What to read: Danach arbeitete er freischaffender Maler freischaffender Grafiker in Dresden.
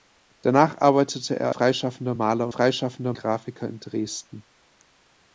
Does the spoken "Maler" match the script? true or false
true